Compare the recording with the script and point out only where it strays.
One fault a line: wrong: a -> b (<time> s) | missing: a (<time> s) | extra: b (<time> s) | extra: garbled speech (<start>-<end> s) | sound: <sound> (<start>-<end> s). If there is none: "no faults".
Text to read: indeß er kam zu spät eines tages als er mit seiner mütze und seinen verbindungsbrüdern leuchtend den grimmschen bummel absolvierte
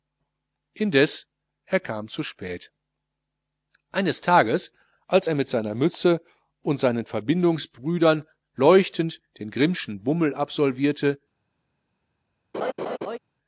sound: laugh (12.5-13.2 s)